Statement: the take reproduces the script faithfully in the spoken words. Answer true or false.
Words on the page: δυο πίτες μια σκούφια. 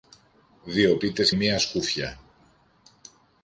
true